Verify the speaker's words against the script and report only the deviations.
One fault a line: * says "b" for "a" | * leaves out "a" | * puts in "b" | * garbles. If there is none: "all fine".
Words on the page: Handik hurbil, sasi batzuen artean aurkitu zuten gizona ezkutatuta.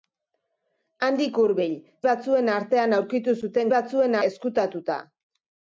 * leaves out "sasi"
* says "batzuen" for "gizona"